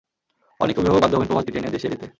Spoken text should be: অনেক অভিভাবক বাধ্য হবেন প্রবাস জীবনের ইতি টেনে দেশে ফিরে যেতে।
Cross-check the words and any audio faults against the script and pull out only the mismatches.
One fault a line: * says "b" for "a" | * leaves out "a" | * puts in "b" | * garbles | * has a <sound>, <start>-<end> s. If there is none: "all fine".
* leaves out "জীবনের"
* leaves out "ফিরে"